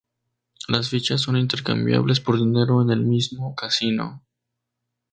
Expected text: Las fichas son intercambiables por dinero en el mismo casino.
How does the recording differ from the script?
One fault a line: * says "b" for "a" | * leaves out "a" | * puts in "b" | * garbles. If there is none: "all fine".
all fine